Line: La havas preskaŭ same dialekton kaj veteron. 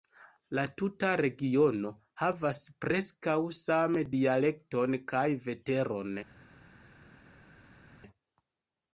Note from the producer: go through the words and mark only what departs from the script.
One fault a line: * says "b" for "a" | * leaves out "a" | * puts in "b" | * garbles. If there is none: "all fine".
* puts in "tuta regiono"